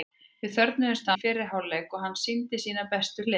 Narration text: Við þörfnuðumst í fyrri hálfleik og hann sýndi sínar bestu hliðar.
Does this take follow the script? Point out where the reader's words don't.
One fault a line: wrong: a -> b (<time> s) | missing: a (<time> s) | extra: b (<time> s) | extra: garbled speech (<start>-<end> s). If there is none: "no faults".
no faults